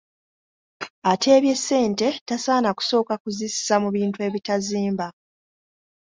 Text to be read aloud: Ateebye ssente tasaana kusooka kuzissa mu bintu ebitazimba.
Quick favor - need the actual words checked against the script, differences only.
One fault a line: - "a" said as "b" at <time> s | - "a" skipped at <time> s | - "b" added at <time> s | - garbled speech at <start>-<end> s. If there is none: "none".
none